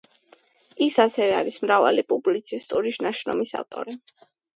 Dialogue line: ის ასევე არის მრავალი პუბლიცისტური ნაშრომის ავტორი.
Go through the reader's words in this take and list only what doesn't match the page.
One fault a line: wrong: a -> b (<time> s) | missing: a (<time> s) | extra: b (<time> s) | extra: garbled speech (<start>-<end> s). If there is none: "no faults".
no faults